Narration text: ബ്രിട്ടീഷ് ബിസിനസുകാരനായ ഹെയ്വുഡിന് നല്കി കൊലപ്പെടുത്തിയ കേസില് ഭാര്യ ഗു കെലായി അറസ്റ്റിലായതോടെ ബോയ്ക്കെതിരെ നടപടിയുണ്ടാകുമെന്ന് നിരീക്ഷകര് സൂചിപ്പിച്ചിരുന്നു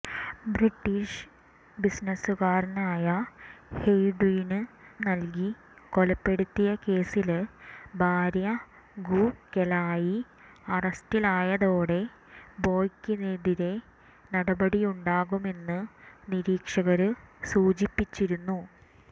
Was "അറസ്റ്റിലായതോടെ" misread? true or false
false